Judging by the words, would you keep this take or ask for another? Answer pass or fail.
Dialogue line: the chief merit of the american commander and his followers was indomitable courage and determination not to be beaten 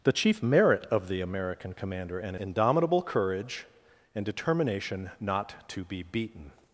fail